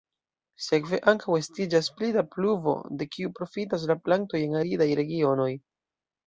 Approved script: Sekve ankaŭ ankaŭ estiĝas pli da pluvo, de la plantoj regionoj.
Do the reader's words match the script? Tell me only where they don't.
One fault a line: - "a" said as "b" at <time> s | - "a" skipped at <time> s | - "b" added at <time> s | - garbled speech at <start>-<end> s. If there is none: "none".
- "ankaŭ" skipped at 1.4 s
- "kiu profitas" added at 3.2 s
- "en aridaj" added at 4.5 s